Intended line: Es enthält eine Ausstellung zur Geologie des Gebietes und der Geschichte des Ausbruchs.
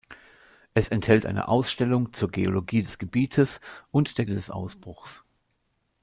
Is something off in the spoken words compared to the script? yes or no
yes